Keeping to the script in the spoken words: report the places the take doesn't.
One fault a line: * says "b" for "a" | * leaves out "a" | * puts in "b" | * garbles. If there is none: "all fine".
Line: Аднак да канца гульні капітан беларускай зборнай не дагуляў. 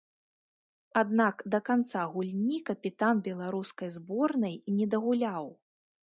all fine